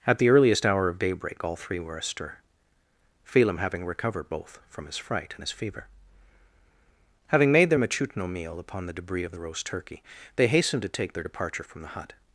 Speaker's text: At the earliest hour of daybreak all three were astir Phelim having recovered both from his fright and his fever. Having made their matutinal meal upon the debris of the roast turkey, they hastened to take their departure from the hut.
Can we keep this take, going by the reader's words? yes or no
yes